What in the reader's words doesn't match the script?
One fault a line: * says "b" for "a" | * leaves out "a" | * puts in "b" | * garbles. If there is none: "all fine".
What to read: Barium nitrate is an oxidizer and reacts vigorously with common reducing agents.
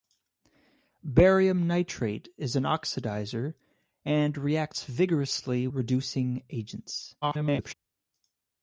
* leaves out "with common"
* garbles